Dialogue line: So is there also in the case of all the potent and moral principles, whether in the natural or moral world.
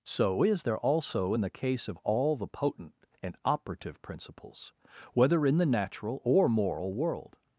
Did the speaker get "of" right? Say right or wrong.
right